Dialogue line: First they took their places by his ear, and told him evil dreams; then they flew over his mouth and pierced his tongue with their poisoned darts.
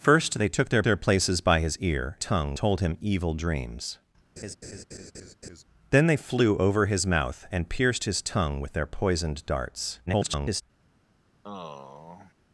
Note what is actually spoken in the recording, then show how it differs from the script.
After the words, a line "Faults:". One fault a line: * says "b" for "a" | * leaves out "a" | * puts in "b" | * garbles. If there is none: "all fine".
First they took their their places by his ear, tongue told him evil dreams; then they flew over his mouth and pierced his tongue with their poisoned darts. [garbled]
Faults:
* puts in "their"
* says "tongue" for "and"
* garbles